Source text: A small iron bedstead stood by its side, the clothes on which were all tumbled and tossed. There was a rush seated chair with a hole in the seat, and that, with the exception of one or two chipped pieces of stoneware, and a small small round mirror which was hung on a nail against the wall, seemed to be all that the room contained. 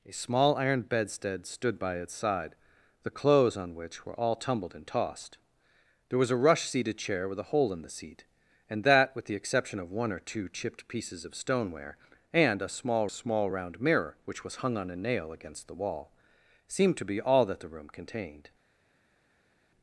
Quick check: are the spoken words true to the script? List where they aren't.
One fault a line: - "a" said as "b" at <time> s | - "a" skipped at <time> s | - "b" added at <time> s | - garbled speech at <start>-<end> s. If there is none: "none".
none